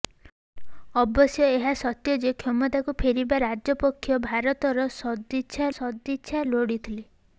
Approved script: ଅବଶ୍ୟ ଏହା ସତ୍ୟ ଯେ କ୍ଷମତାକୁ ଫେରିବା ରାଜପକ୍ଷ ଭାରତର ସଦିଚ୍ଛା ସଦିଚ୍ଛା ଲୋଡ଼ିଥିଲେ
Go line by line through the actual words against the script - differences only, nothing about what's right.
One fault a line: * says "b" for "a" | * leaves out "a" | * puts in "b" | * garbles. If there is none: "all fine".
all fine